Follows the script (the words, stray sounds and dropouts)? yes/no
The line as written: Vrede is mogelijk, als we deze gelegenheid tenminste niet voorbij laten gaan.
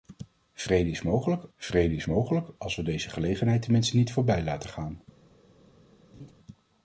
no